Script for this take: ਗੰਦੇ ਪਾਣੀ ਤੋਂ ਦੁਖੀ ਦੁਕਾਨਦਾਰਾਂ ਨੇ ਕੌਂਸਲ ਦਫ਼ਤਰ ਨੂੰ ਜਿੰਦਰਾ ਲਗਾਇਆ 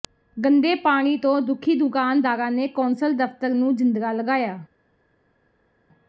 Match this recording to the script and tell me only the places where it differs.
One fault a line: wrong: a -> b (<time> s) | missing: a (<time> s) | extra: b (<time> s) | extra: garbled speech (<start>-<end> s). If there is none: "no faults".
no faults